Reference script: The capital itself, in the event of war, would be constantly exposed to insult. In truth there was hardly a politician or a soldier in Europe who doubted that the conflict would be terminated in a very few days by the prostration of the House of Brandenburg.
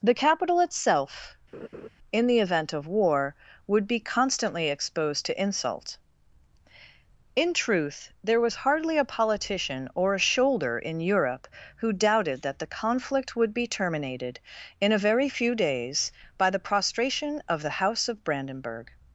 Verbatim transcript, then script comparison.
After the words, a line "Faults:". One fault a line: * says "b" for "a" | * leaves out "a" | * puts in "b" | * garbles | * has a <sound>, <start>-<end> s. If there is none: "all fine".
The capital itself, in the event of war, would be constantly exposed to insult. In truth there was hardly a politician or a shoulder in Europe who doubted that the conflict would be terminated in a very few days by the prostration of the House of Brandenburg.
Faults:
* has a laugh, 1.5-1.9 s
* says "shoulder" for "soldier"